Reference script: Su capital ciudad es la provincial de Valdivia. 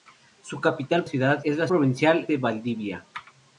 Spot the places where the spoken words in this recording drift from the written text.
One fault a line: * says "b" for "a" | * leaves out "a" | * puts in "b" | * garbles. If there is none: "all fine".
all fine